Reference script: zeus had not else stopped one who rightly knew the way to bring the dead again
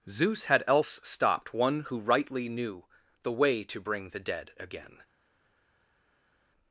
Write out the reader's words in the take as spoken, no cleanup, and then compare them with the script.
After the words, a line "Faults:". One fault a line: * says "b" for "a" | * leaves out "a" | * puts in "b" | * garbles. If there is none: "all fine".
zeus had else stopped one who rightly knew the way to bring the dead again
Faults:
* leaves out "not"